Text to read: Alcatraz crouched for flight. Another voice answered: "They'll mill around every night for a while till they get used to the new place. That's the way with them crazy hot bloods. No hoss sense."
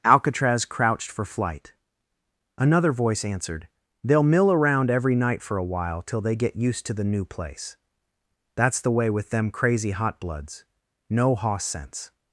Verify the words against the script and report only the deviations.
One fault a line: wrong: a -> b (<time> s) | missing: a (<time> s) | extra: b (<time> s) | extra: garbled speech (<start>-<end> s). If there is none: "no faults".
no faults